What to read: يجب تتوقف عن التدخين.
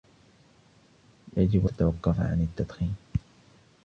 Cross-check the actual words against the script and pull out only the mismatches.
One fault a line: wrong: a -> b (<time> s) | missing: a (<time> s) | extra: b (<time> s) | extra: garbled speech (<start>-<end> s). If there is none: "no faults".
no faults